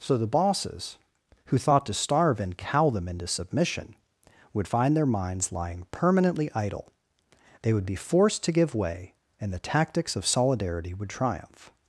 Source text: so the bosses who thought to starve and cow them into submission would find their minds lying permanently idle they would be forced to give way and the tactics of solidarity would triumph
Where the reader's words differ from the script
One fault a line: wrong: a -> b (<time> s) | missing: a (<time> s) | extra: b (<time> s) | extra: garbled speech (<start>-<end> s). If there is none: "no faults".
no faults